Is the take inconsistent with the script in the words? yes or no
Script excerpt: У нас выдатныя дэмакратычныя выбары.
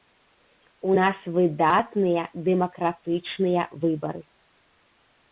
no